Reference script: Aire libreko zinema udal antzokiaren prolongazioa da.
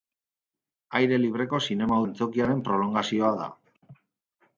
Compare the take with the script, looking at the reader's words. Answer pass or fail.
fail